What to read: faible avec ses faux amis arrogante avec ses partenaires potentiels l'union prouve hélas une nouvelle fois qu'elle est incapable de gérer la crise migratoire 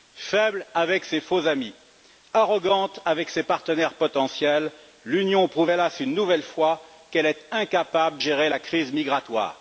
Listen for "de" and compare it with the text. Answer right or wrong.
wrong